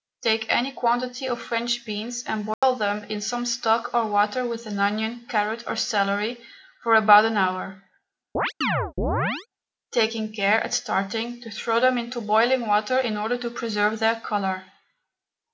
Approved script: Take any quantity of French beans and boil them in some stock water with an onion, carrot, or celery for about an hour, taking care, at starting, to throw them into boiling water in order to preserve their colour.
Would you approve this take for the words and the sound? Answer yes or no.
no